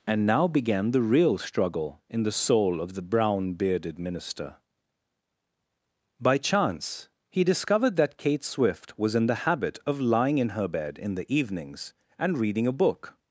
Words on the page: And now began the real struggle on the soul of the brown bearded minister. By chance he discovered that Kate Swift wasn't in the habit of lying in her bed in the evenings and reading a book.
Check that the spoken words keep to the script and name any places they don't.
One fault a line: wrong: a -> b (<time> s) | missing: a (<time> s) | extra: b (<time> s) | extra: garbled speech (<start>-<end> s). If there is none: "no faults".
wrong: on -> in (2.1 s)
wrong: wasn't -> was (9.0 s)